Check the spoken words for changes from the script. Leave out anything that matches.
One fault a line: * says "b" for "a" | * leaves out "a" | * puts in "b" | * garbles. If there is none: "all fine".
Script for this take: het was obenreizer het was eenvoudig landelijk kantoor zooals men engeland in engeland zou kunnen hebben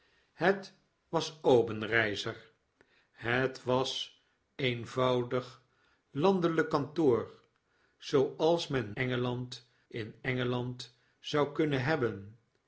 all fine